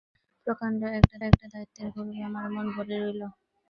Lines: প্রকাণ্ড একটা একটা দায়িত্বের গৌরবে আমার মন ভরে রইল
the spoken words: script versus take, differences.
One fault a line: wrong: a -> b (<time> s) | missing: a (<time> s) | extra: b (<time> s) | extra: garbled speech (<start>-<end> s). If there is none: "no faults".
no faults